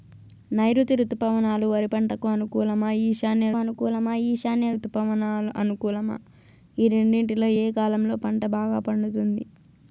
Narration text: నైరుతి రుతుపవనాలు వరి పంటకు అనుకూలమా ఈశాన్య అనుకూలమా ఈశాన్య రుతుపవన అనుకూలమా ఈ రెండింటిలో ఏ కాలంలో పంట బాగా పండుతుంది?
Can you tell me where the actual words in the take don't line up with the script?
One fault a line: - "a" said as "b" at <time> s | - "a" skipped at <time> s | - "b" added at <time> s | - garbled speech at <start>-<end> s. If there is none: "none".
none